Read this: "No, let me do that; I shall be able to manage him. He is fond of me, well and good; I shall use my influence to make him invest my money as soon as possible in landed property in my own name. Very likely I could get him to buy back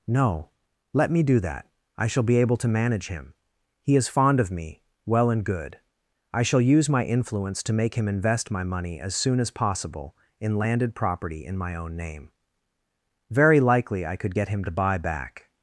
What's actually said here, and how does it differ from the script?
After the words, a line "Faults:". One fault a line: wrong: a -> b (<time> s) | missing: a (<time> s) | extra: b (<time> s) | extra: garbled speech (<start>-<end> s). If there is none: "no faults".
"No, let me do that; I shall be able to manage him. He is fond of me, well and good; I shall use my influence to make him invest my money as soon as possible in landed property in my own name. Very likely I could get him to buy back
Faults:
no faults